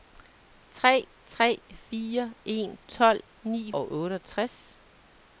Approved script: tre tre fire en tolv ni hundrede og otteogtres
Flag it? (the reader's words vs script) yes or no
yes